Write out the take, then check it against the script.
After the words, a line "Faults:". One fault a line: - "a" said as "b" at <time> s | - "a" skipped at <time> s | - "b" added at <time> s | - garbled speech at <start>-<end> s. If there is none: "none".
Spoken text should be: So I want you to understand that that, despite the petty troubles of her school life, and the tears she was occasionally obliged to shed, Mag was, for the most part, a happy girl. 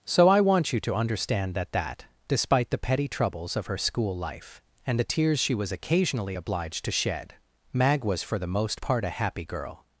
So I want you to understand that that, despite the petty troubles of her school life, and the tears she was occasionally obliged to shed, Mag was, for the most part, a happy girl.
Faults:
none